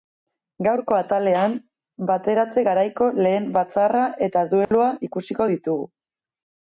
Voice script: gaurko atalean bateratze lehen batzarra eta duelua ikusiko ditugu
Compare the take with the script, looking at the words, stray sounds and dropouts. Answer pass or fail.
fail